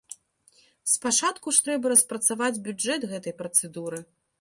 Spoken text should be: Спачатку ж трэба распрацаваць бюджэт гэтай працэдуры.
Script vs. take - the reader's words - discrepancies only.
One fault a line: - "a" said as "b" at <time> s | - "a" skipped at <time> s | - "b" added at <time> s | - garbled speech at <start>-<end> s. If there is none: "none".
none